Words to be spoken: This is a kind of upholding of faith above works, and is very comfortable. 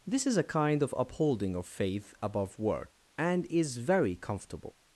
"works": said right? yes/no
no